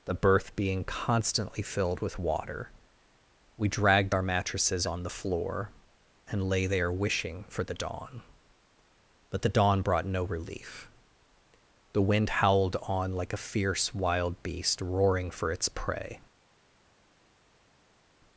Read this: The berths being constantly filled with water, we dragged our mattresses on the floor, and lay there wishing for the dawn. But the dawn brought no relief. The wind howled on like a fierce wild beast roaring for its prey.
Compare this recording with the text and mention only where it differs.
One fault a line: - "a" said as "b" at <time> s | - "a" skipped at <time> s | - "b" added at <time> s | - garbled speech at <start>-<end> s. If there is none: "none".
- "berths" said as "berth" at 0.1 s